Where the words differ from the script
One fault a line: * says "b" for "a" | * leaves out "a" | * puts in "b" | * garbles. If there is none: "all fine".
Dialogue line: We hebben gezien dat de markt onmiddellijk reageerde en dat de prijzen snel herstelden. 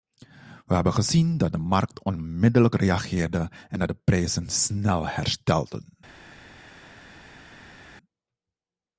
all fine